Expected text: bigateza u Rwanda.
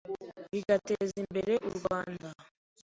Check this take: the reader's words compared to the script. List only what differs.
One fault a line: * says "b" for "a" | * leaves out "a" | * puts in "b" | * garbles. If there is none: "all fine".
* puts in "imbere"